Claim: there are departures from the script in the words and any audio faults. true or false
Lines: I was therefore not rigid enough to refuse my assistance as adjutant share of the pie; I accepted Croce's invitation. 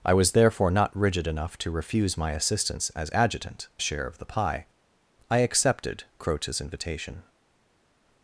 false